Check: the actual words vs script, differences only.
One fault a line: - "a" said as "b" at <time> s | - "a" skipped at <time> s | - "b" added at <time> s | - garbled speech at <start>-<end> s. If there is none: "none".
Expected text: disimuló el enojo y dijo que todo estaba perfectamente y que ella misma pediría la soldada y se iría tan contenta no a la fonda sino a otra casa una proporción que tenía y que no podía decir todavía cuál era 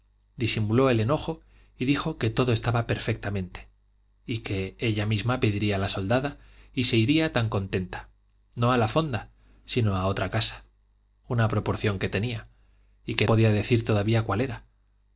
- "no" skipped at 13.3 s